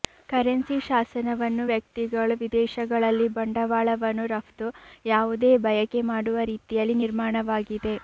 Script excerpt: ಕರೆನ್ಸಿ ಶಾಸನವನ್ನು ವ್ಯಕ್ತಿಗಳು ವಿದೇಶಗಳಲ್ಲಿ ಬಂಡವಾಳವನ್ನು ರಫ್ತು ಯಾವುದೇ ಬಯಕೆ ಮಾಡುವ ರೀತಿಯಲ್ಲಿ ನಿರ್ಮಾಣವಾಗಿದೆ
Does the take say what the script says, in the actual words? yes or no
yes